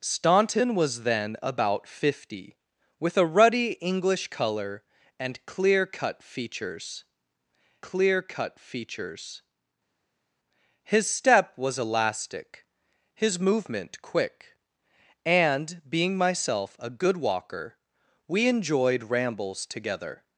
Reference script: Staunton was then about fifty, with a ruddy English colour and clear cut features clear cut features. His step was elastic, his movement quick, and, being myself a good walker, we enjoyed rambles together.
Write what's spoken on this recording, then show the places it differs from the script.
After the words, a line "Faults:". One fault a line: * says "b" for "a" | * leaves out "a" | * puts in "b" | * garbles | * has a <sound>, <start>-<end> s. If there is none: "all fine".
Staunton was then about fifty, with a ruddy English colour and clear cut features clear cut features. His step was elastic, his movement quick, and, being myself a good walker, we enjoyed rambles together.
Faults:
all fine